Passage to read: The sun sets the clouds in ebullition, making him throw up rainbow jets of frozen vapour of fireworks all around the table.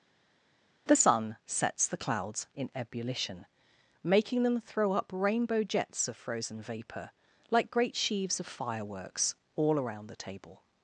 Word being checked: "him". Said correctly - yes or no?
no